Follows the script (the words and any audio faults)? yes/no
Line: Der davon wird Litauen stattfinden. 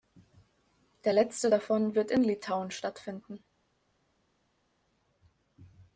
no